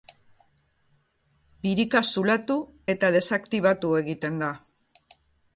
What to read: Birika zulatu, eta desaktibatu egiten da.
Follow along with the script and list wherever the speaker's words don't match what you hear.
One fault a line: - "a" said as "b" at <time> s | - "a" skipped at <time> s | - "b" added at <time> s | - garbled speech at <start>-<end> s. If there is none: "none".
none